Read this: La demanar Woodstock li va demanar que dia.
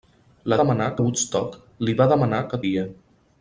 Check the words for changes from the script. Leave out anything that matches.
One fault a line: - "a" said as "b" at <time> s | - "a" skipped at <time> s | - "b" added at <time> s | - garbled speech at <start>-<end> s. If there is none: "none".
none